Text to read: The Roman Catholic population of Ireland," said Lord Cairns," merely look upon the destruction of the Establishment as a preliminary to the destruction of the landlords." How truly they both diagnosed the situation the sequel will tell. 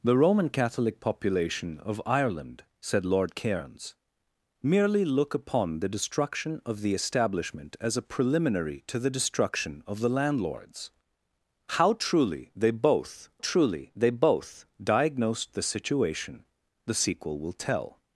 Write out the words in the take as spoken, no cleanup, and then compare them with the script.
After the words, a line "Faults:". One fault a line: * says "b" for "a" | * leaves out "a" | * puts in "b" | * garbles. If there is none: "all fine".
The Roman Catholic population of Ireland," said Lord Cairns," merely look upon the destruction of the Establishment as a preliminary to the destruction of the landlords." How truly they both truly they both diagnosed the situation the sequel will tell.
Faults:
* puts in "truly they both"